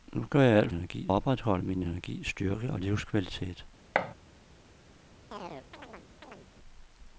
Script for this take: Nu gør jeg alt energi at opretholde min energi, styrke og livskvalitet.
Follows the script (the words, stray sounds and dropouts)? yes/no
no